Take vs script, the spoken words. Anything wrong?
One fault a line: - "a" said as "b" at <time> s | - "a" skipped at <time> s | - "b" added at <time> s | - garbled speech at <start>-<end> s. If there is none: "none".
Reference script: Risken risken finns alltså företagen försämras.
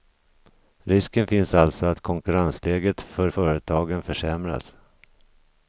- "risken" skipped at 1.3 s
- "att konkurrensläget för" added at 1.9 s